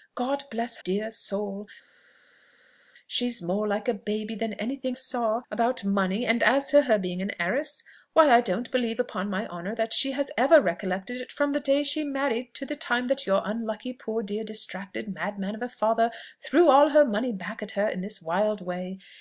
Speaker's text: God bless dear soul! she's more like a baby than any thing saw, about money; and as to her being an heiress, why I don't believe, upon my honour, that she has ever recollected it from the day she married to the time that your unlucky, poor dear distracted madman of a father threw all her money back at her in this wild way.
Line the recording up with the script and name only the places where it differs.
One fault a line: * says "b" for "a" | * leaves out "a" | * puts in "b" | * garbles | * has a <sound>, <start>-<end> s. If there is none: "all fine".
all fine